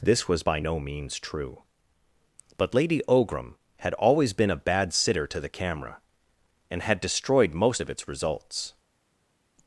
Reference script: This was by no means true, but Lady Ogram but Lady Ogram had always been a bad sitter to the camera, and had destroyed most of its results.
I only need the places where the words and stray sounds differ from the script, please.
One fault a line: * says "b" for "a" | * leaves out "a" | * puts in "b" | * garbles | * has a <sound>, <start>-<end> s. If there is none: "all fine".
* leaves out "but Lady Ogram"